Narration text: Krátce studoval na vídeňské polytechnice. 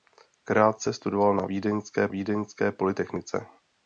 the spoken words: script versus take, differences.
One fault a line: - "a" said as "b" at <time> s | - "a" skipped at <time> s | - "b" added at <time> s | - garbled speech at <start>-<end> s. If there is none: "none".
- "vídeňské" added at 2.1 s